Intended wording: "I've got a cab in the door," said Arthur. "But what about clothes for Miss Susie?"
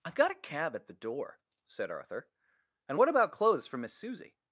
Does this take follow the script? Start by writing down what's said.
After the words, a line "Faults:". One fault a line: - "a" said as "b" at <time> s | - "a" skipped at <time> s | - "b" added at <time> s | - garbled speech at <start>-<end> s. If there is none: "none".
"I've got a cab at the door," said Arthur. "And what about clothes for Miss Susie?"
Faults:
- "in" said as "at" at 0.8 s
- "But" said as "And" at 2.9 s